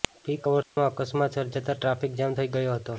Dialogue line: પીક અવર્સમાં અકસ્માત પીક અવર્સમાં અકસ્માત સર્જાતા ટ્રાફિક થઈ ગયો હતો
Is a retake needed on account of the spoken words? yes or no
yes